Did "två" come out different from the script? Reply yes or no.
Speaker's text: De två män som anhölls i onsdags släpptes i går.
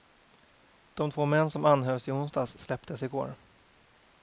no